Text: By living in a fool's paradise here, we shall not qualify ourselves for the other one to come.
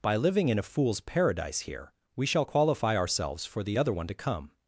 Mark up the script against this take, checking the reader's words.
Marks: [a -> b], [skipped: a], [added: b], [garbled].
By living in a fool's paradise here, we shall [skipped: not] qualify ourselves for the other one to come.